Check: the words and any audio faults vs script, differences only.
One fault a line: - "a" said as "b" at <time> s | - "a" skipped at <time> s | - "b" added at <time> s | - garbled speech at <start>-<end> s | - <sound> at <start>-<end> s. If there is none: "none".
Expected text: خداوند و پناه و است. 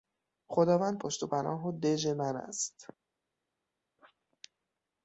- "پشت" added at 1.0 s
- "دژ من" added at 1.8 s